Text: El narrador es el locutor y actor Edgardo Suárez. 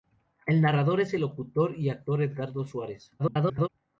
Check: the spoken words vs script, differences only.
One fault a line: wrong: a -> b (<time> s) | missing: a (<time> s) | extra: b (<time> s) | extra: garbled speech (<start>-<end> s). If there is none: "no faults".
extra: garbled speech (3.2-3.7 s)